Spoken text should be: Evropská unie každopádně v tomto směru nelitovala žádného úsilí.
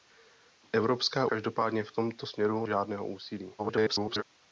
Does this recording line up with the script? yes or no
no